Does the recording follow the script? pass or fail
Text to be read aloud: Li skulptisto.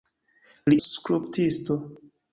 pass